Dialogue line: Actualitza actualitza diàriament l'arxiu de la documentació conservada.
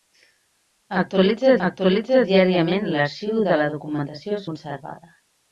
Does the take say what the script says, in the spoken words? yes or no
yes